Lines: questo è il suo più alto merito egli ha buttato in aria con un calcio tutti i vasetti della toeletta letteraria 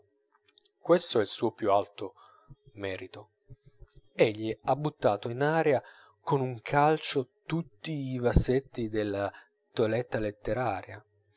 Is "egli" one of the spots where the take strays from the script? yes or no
no